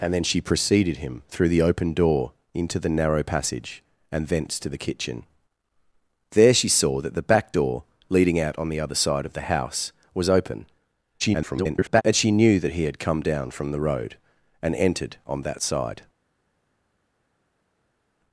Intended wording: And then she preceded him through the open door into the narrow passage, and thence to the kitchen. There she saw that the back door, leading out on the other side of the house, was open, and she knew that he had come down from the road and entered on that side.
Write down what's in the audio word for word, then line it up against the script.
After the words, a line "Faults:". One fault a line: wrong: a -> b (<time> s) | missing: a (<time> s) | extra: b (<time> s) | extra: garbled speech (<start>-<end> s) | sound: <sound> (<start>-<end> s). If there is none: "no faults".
And then she preceded him through the open door into the narrow passage, and thence to the kitchen. There she saw that the back door, leading out on the other side of the house, was open, [garbled] and she knew that he had come down from the road and entered on that side.
Faults:
extra: garbled speech (11.2-12.0 s)